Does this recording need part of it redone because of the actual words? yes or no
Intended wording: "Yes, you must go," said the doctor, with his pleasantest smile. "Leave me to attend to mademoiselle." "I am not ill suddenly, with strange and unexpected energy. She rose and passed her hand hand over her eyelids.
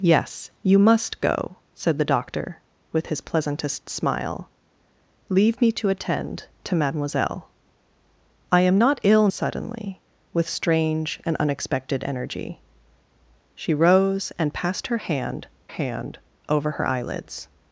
no